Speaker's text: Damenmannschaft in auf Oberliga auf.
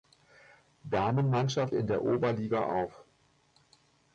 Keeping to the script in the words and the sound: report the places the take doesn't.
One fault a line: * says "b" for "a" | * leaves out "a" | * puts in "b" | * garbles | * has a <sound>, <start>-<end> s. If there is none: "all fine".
* says "der" for "auf"